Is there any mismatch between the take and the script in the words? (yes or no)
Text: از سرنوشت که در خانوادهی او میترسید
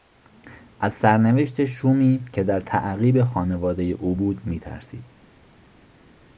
yes